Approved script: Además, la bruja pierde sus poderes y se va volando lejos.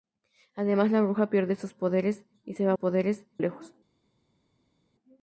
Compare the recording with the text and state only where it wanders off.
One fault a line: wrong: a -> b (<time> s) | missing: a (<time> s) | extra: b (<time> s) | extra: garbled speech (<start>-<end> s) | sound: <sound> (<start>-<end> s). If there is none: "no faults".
wrong: volando -> poderes (2.8 s)